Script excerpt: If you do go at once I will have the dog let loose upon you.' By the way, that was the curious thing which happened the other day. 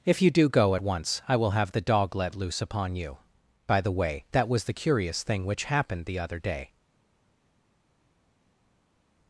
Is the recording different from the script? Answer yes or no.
no